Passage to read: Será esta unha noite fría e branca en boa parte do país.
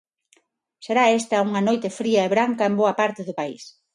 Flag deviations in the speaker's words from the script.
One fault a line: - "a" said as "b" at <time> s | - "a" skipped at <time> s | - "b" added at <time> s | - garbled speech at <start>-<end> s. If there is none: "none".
none